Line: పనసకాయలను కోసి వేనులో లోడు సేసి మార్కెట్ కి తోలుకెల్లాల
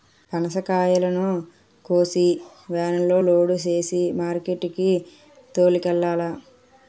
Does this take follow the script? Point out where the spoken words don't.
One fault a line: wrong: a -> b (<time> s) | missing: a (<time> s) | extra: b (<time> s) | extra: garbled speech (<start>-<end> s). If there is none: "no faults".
no faults